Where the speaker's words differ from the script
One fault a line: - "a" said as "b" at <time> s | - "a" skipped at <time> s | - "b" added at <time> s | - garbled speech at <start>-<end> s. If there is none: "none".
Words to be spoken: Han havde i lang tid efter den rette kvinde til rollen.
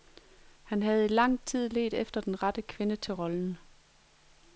- "ledt" added at 1.7 s